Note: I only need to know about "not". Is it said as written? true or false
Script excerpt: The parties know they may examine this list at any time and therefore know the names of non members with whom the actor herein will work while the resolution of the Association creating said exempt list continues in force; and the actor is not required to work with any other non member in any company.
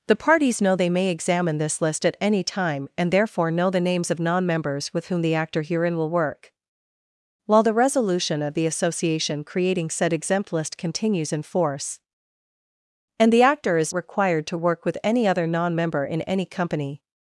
false